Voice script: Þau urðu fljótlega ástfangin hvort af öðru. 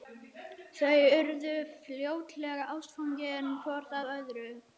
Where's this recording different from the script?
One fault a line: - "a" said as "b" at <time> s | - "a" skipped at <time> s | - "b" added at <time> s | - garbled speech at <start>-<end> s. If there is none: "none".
none